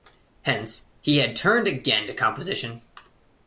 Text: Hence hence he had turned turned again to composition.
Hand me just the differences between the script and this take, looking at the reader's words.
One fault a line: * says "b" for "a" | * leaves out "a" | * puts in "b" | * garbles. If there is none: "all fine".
* leaves out "hence"
* leaves out "turned"